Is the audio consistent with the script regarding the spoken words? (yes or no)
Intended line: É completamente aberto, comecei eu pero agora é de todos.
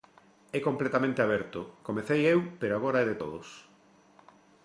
yes